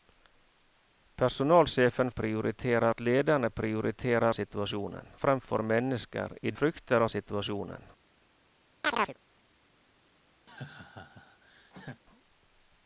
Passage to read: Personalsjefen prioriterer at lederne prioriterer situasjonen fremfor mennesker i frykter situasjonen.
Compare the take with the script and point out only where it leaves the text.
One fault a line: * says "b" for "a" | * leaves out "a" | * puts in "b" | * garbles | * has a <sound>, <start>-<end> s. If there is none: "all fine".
* has a chirp, 8.8-9.2 s
* has a laugh, 10.5-12.0 s